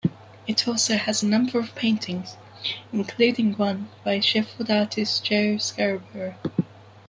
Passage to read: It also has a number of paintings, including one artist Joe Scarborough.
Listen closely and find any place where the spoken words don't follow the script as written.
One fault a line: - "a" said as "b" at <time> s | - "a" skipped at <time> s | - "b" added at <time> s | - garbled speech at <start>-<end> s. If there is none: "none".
- "by Sheffield" added at 4.0 s